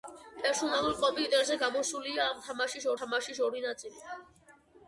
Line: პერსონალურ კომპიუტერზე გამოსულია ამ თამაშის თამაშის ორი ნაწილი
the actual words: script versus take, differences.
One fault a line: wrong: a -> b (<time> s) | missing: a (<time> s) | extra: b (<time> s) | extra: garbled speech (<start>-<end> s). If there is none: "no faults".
no faults